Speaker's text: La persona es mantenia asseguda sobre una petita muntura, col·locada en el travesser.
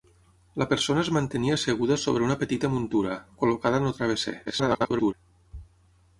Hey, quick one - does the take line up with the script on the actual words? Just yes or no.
no